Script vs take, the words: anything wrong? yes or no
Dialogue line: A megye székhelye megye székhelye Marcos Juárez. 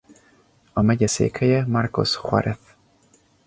yes